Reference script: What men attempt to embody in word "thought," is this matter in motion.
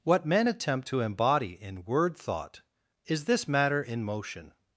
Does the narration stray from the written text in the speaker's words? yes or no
no